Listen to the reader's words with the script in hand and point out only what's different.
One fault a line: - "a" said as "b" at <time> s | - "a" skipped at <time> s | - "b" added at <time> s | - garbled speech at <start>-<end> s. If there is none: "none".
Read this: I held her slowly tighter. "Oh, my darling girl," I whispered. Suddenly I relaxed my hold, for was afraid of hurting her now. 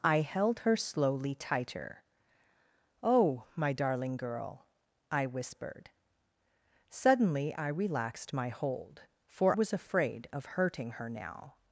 none